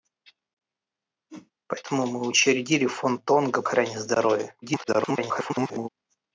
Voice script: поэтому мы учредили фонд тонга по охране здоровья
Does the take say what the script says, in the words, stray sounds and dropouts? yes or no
no